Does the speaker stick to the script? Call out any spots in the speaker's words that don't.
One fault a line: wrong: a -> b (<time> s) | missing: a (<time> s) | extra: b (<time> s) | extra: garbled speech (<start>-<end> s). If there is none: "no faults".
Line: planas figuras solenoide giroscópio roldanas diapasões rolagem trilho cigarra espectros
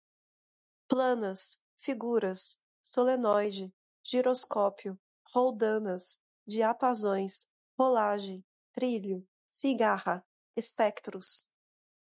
no faults